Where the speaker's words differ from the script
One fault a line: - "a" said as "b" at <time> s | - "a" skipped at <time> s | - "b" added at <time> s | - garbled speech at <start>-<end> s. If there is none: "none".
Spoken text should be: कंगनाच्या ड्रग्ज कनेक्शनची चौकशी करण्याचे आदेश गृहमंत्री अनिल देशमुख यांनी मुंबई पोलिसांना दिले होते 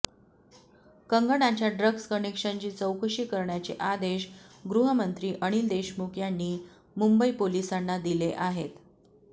- "होते" said as "आहेत" at 8.3 s